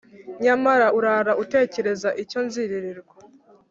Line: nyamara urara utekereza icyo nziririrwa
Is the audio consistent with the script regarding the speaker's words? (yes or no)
yes